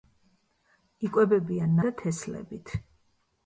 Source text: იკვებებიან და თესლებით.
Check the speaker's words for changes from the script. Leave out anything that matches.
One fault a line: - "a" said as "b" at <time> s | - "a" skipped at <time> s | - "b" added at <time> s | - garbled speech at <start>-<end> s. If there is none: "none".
none